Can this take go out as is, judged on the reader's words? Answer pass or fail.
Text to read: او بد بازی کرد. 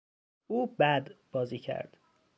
pass